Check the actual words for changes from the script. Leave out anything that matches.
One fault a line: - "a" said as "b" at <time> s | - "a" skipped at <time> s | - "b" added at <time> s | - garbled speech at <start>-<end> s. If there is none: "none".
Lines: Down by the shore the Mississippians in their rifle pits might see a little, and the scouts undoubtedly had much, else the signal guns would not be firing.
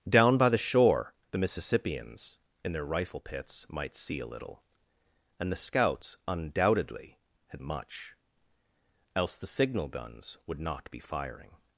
none